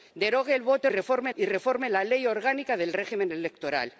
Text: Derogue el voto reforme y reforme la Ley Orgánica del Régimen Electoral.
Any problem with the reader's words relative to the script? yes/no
no